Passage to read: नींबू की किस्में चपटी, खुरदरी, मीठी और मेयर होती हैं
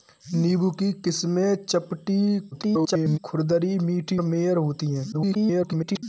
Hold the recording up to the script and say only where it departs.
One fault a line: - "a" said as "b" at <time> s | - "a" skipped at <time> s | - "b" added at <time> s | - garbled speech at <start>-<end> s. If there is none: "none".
- garbled speech at 2.5-3.2 s
- "और" skipped at 4.2 s
- garbled speech at 5.1-6.0 s